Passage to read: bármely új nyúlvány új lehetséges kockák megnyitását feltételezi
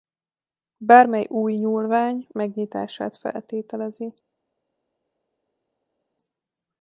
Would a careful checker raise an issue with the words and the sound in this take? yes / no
yes